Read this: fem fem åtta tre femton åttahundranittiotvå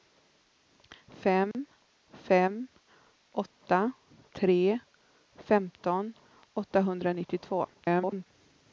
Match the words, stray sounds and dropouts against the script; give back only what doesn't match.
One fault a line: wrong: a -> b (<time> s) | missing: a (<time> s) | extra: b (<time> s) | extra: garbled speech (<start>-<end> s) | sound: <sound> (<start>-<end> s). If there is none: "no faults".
sound: dropout (1.5-1.5 s)
extra: garbled speech (7.7-8.3 s)